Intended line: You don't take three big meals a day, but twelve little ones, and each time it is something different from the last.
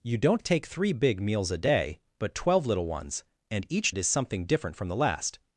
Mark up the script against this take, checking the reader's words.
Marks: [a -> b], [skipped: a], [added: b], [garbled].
You don't take three big meals a day, but twelve little ones, and each [skipped: time] it is something different from the last.